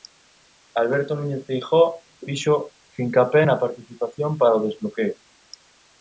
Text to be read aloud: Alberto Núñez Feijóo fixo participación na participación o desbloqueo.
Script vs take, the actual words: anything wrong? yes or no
yes